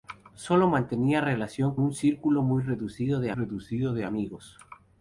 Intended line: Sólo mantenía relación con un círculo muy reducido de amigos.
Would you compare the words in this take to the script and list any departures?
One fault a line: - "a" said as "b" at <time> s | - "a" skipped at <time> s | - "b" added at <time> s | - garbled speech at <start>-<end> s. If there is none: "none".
- "con" skipped at 1.8 s
- "reducido de" added at 3.3 s